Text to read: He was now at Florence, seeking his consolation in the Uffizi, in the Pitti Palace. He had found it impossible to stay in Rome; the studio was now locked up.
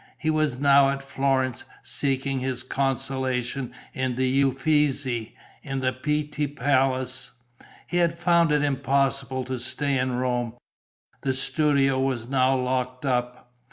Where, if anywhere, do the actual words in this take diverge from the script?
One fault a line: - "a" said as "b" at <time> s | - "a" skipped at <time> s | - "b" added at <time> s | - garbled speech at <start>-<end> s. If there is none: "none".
none